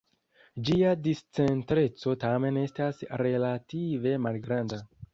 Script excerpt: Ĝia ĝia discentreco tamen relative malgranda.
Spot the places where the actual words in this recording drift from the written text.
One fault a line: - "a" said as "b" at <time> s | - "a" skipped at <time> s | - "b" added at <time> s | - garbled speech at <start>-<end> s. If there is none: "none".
- "ĝia" skipped at 0.9 s
- "estas" added at 2.6 s